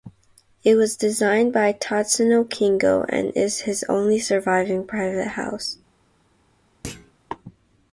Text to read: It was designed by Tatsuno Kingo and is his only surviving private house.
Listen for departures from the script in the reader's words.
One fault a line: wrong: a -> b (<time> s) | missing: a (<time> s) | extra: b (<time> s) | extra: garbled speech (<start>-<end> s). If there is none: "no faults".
no faults